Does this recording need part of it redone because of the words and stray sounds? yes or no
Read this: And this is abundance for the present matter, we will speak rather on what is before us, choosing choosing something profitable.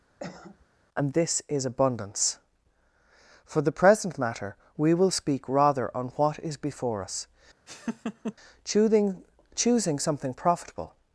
yes